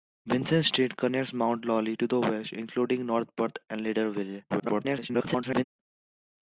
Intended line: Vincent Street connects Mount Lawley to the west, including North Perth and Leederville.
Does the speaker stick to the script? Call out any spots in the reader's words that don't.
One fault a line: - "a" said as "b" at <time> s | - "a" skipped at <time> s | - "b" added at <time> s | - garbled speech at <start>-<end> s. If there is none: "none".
- garbled speech at 4.5-5.6 s